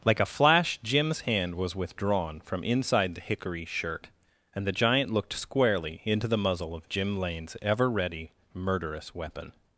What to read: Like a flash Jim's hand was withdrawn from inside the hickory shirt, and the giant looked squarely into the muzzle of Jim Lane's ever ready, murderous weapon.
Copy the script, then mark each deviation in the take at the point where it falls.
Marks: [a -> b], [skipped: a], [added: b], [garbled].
Like a flash Jim's hand was withdrawn from inside the hickory shirt, and the giant looked squarely into the muzzle of Jim Lane's ever ready, murderous weapon.